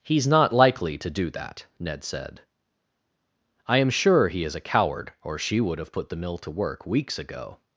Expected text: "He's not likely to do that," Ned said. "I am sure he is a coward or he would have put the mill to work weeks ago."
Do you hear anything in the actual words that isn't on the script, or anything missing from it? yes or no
yes